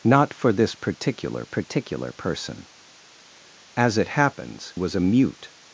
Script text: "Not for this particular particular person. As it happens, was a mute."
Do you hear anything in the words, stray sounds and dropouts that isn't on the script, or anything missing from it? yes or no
no